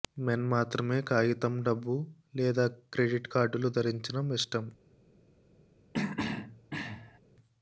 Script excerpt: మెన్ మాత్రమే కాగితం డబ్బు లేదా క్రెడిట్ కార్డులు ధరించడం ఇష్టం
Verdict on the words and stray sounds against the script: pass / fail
fail